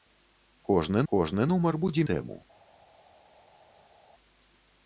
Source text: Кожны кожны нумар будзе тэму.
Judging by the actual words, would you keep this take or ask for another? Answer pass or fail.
pass